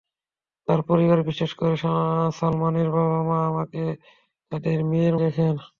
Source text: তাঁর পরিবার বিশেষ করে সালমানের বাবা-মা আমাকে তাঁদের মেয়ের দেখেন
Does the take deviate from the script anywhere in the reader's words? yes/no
no